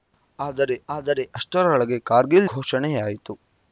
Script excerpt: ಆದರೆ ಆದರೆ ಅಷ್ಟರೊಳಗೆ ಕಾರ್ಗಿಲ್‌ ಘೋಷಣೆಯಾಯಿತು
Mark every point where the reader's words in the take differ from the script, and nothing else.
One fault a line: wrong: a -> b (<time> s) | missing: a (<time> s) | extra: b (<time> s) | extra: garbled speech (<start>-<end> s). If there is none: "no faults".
no faults